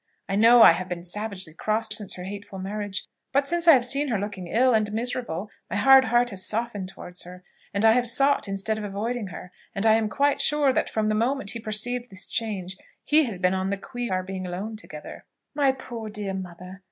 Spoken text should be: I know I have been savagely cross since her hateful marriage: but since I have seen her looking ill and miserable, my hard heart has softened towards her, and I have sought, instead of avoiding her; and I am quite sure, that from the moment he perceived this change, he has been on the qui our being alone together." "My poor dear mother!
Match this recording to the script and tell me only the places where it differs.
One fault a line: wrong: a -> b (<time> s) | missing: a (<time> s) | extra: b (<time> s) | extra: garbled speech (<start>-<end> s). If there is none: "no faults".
no faults